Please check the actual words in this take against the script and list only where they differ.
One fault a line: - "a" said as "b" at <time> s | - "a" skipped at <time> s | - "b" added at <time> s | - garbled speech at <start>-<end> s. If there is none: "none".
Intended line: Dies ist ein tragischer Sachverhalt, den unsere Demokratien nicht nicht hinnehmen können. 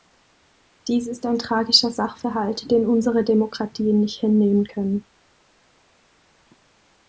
- "nicht" skipped at 4.2 s